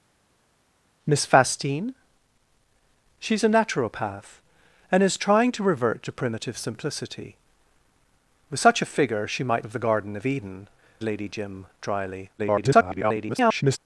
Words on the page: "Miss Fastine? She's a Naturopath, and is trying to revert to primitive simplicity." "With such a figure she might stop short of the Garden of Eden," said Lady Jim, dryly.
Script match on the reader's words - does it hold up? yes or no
no